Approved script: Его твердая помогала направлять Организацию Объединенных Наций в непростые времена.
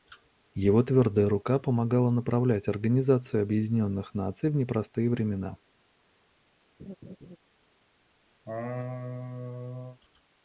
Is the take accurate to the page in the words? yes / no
no